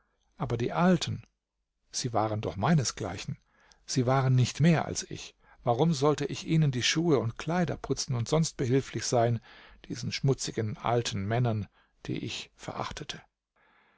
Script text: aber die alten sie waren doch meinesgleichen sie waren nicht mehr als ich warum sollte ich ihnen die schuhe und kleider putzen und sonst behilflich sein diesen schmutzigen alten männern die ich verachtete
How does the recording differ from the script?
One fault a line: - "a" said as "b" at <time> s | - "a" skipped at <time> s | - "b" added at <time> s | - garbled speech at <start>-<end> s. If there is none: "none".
none